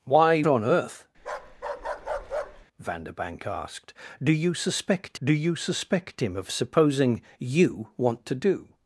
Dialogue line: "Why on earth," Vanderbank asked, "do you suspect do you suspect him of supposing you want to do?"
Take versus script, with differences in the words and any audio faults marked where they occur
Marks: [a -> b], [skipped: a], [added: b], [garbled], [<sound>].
"Why on earth," [bark] Vanderbank asked, "do you suspect do you suspect him of supposing you want to do?"